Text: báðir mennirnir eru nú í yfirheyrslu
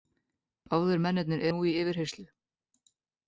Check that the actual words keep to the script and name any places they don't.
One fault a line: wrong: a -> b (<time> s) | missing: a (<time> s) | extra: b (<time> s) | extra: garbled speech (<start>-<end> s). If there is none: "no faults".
missing: eru (1.4 s)